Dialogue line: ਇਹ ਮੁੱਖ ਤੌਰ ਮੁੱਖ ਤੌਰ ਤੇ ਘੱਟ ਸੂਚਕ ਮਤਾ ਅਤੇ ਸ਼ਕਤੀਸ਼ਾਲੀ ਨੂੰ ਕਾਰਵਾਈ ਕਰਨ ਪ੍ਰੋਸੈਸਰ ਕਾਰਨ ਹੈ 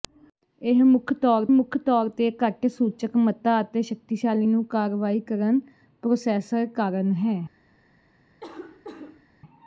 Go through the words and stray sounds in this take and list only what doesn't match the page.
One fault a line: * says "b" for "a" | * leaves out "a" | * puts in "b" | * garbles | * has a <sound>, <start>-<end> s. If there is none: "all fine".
* has a cough, 8.4-9.3 s